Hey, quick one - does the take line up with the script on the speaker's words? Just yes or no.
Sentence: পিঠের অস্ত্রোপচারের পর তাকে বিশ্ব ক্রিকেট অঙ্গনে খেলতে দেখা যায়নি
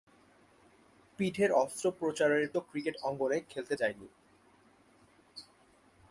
no